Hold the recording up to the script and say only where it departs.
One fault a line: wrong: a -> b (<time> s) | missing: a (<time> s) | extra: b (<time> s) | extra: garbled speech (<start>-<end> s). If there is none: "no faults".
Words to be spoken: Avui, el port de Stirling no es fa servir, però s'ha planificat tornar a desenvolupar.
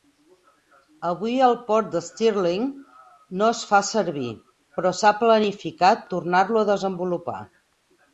extra: lo (6.5 s)